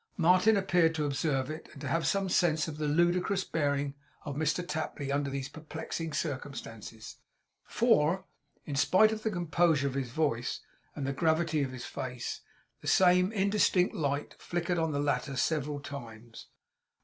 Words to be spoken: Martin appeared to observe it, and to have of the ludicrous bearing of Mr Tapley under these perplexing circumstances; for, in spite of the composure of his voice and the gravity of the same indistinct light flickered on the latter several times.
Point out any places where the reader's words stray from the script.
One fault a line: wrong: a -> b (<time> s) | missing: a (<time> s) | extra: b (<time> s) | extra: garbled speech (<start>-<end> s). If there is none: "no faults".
extra: some sense (2.1 s)
extra: his face (11.7 s)